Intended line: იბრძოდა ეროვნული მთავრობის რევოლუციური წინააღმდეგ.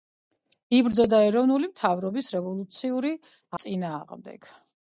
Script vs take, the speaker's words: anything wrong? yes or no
no